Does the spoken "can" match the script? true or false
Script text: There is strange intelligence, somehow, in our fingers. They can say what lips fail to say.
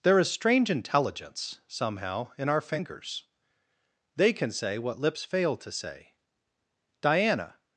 true